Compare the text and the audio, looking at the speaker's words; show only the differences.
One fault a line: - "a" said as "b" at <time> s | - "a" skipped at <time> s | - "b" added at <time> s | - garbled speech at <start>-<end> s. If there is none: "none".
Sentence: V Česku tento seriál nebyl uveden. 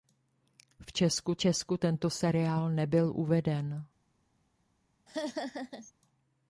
- "Česku" added at 1.4 s